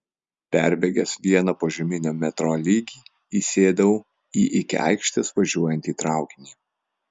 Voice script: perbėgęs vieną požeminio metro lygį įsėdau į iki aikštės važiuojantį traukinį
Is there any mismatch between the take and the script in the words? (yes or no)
no